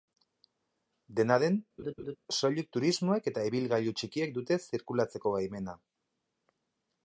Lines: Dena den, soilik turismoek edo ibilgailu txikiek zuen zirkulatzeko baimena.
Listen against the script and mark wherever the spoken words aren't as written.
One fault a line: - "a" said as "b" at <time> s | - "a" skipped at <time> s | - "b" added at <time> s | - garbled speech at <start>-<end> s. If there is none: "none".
- "edo" said as "eta" at 3.3 s
- "zuen" said as "dute" at 4.4 s